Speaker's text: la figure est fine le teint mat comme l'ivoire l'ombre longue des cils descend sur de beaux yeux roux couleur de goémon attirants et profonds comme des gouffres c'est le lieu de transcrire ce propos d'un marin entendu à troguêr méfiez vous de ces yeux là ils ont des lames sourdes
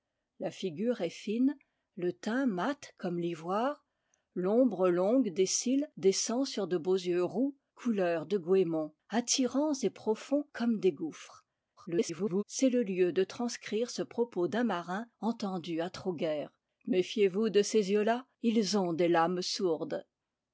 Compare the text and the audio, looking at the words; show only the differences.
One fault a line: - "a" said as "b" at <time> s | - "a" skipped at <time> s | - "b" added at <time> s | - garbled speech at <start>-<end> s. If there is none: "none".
- garbled speech at 11.8-12.4 s